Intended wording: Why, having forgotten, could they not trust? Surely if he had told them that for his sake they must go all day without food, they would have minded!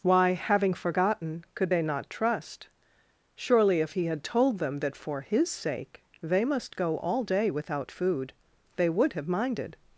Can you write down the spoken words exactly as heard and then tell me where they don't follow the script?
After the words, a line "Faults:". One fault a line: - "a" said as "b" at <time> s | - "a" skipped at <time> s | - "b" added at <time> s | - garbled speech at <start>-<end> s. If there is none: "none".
Why, having forgotten, could they not trust? Surely if he had told them that for his sake they must go all day without food, they would have minded!
Faults:
none